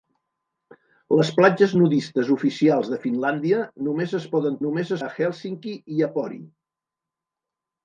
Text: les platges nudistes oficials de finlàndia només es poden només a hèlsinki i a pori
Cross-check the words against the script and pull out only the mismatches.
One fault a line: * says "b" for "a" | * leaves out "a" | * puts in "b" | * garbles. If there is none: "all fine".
all fine